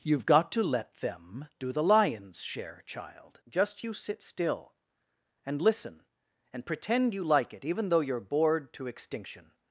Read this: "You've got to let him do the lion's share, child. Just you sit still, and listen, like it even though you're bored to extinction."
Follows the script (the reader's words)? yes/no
no